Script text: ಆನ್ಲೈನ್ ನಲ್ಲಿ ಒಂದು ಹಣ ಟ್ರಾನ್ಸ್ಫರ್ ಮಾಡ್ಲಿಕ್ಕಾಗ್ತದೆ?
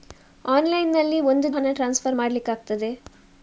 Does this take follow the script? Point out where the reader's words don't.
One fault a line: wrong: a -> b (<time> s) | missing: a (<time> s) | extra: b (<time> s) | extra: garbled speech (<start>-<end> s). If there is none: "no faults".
no faults